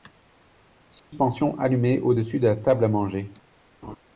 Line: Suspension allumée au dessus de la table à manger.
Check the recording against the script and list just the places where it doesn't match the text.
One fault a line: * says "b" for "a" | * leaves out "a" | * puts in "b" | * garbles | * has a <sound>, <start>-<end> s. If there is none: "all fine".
* has a dropout, 1.0-1.1 s
* has a laugh, 3.8-4.0 s